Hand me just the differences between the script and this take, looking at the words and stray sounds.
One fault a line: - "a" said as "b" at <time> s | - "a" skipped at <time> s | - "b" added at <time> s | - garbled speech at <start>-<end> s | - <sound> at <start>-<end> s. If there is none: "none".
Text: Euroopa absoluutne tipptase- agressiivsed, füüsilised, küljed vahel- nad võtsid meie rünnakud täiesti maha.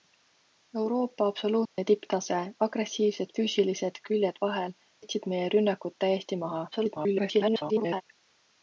- dropout at 1.6-1.8 s
- "nad" skipped at 4.8 s
- garbled speech at 6.7-8.0 s